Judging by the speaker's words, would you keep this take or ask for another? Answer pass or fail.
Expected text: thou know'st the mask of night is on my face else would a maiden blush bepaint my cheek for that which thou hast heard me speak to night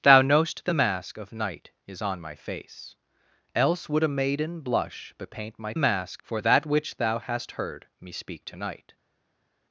fail